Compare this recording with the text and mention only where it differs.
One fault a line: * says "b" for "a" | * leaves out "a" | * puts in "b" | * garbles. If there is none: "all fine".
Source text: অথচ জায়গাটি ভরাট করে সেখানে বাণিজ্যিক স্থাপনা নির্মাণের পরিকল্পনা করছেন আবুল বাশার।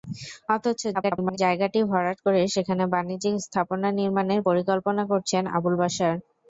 * garbles